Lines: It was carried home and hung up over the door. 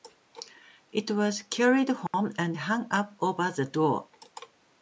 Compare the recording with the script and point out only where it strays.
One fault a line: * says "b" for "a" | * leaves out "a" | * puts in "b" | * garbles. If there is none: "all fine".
all fine